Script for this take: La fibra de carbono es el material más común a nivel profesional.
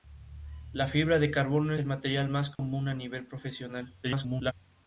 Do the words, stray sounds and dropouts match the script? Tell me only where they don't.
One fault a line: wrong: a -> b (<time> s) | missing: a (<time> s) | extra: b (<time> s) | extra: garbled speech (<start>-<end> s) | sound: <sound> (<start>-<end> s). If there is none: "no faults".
missing: es (1.8 s)
sound: dropout (2.6-2.6 s)
extra: garbled speech (4.0-4.5 s)